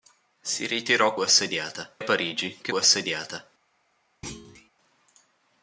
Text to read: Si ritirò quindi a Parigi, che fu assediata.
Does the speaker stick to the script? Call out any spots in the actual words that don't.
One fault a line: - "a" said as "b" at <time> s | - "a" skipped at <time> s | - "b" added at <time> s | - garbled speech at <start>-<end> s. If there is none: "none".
- "quindi" said as "assediata" at 1.2 s
- "fu" skipped at 2.7 s